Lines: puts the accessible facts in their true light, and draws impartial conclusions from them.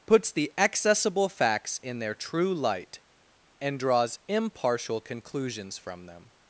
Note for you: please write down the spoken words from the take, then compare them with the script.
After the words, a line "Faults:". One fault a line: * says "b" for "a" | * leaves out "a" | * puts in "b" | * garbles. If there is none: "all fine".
puts the accessible facts in their true light, and draws impartial conclusions from them.
Faults:
all fine